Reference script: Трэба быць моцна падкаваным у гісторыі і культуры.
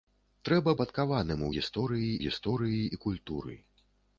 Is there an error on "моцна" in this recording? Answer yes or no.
yes